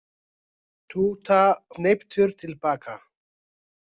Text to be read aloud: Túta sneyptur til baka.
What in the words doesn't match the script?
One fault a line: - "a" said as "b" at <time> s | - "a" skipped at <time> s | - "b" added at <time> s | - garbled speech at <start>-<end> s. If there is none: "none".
none